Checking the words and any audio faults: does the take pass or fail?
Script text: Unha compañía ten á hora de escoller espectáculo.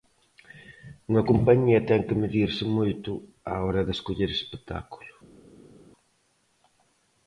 fail